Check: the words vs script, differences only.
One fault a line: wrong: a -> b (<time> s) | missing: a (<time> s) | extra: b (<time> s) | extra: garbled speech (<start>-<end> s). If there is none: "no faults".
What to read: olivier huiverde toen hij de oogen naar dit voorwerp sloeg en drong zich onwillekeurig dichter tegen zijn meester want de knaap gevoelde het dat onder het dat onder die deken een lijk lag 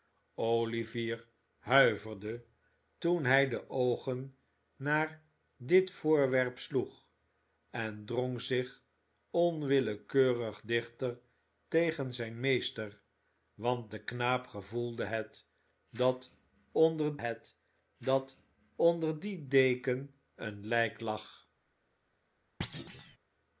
no faults